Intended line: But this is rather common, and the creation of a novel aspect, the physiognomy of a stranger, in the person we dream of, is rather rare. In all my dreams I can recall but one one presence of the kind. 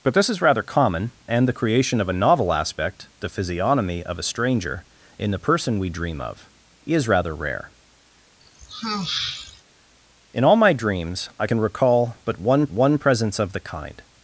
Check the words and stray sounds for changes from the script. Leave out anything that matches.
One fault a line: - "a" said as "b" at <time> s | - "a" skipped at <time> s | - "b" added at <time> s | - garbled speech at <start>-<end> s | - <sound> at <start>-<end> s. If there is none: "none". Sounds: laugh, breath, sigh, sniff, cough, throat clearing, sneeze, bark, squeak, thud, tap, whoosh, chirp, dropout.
- sigh at 8.4-9.6 s